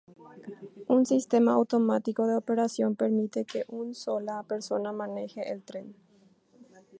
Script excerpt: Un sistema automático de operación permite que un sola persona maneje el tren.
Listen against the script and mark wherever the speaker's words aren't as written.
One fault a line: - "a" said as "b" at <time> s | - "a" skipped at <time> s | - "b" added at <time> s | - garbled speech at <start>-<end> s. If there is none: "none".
none